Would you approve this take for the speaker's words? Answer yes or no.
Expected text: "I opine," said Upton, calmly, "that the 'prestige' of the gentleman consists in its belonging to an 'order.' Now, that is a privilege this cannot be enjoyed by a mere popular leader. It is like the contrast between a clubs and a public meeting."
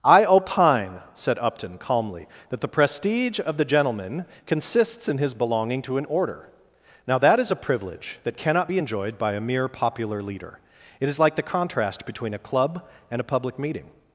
no